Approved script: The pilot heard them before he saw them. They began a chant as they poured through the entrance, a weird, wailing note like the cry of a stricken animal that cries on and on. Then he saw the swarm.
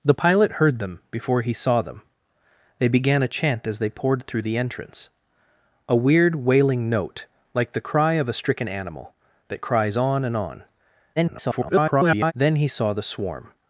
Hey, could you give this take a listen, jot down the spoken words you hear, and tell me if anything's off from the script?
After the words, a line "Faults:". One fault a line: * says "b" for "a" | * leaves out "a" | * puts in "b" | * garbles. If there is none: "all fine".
The pilot heard them before he saw them. They began a chant as they poured through the entrance, a weird, wailing note like the cry of a stricken animal that cries on and on. [garbled] Then he saw the swarm.
Faults:
* garbles